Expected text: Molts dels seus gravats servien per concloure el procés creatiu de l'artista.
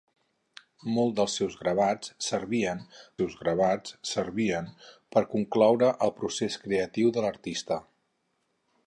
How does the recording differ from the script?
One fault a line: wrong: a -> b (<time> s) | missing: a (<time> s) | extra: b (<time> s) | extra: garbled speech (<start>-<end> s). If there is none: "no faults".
extra: seus gravats servien (3.2 s)